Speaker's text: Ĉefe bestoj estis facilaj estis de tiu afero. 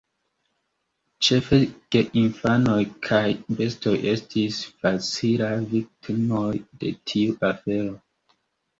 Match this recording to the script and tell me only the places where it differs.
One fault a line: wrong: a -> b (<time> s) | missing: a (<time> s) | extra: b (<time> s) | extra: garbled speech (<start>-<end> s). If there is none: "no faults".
extra: geinfanoj kaj (2.0 s)
wrong: estis -> viktimoj (5.8 s)